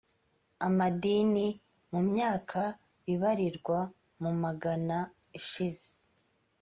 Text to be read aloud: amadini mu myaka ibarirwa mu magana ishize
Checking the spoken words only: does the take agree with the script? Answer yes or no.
yes